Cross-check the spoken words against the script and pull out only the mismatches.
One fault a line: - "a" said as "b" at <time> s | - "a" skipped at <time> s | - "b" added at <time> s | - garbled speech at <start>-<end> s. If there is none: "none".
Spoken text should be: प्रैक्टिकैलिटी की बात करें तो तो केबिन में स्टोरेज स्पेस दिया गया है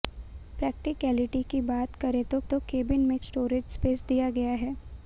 none